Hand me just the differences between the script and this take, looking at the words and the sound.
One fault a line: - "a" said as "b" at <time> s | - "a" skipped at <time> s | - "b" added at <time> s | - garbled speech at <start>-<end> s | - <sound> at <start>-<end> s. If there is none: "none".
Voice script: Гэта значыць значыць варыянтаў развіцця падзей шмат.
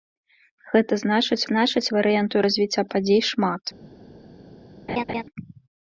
- laugh at 4.9-5.2 s